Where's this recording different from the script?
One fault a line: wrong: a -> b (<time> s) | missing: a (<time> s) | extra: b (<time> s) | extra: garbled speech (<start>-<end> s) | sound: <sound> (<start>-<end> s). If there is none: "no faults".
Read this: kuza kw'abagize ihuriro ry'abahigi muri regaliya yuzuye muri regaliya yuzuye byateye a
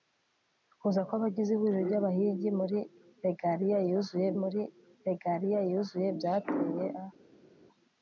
no faults